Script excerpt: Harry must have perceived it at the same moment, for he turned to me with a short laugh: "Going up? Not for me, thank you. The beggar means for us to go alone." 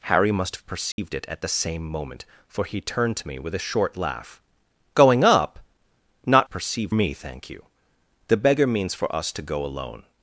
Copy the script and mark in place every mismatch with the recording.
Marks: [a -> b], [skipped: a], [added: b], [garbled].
Harry must have perceived it at the same moment, for he turned to me with a short laugh: "Going up? Not [for -> perceived] me, thank you. The beggar means for us to go alone."